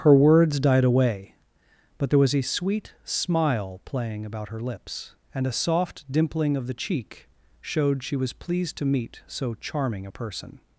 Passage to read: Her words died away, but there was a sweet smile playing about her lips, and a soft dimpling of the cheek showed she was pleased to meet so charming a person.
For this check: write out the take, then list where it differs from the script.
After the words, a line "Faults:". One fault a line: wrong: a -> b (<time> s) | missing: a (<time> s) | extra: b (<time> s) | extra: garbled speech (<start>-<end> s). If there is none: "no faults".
Her words died away, but there was a sweet smile playing about her lips, and a soft dimpling of the cheek showed she was pleased to meet so charming a person.
Faults:
no faults